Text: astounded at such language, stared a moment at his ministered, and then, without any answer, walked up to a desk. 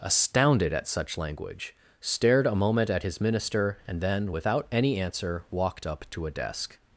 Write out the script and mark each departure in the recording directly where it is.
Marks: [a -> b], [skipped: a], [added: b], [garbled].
astounded at such language, stared a moment at his [ministered, -> minister] and then, without any answer, walked up to a desk.